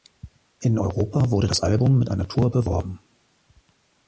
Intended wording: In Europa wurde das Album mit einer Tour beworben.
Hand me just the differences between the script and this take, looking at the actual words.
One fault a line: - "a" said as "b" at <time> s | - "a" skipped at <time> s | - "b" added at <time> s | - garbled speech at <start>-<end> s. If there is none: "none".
none